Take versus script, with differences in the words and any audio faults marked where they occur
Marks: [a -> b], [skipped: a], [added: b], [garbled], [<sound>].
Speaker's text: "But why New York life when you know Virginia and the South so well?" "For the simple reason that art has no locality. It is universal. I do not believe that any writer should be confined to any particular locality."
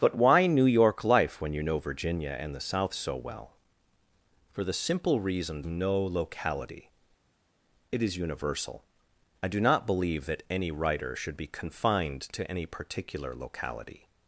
"But why New York life when you know Virginia and the South so well?" "For the simple reason [skipped: that art has] no locality. It is universal. I do not believe that any writer should be confined to any particular locality."